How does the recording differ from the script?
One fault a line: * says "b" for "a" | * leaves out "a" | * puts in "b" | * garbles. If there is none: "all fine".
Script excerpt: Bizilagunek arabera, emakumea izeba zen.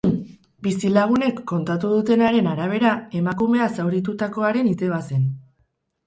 * puts in "kontatu dutenaren"
* puts in "zauritutakoaren"